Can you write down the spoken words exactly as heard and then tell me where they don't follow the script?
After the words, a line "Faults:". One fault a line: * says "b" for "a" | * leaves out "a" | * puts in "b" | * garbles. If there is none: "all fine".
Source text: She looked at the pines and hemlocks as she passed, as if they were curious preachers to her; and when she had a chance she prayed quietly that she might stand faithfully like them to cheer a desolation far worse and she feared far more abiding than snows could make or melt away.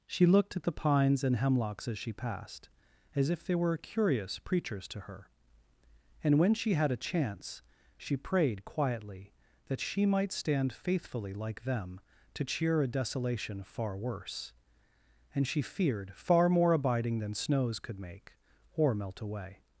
She looked at the pines and hemlocks as she passed, as if they were curious preachers to her; and when she had a chance she prayed quietly that she might stand faithfully like them to cheer a desolation far worse and she feared far more abiding than snows could make or melt away.
Faults:
all fine